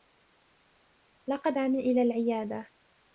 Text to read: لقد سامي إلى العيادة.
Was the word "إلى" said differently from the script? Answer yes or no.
no